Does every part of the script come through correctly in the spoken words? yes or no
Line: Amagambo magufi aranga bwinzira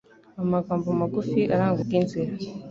yes